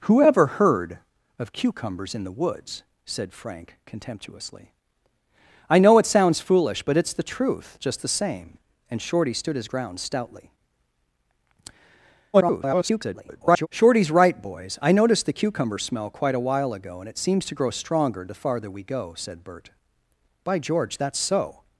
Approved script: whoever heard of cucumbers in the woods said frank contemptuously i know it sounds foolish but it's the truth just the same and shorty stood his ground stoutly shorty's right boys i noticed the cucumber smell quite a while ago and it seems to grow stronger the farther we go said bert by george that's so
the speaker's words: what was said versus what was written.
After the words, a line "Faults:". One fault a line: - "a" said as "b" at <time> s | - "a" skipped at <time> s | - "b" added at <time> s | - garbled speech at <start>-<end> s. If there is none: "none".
whoever heard of cucumbers in the woods said frank contemptuously i know it sounds foolish but it's the truth just the same and shorty stood his ground stoutly [garbled] shorty's right boys i noticed the cucumber smell quite a while ago and it seems to grow stronger the farther we go said bert by george that's so
Faults:
- garbled speech at 12.3-13.7 s